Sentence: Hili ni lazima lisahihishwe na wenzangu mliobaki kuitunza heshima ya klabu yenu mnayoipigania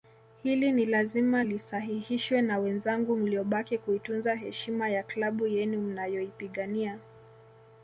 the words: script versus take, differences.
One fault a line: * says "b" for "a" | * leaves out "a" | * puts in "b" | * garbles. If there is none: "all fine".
all fine